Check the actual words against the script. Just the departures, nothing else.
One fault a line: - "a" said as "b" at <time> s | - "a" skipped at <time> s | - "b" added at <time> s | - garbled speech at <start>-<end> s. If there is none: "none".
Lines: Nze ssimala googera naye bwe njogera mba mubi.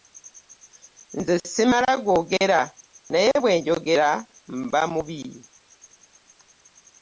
none